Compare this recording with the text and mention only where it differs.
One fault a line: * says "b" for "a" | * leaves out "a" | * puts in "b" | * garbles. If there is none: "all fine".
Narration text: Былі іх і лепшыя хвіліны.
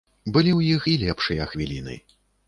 * puts in "ў"